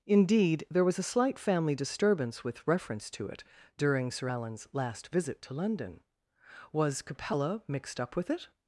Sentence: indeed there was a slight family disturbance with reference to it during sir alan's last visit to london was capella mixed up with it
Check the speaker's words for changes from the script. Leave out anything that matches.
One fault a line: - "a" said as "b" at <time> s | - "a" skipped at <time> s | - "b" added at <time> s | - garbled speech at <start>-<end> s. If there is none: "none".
none